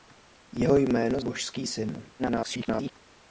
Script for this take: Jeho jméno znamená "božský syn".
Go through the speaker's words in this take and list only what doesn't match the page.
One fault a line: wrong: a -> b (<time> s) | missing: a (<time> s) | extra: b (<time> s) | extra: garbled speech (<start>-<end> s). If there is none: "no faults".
missing: znamená (1.2 s)
extra: garbled speech (2.2-2.9 s)